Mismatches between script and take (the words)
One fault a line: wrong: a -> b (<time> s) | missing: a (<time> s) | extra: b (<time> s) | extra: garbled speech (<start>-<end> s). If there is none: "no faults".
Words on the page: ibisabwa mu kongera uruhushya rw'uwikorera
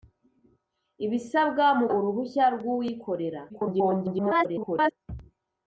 missing: kongera (1.9 s)
extra: garbled speech (3.5-4.9 s)